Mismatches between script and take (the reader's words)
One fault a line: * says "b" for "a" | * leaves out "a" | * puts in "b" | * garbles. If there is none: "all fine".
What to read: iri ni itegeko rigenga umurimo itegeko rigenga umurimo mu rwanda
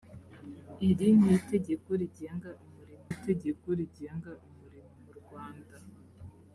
all fine